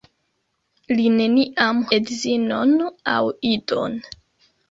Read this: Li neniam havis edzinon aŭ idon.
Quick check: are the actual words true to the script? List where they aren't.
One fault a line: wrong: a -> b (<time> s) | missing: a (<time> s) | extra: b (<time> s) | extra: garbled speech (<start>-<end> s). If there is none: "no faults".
missing: havis (1.8 s)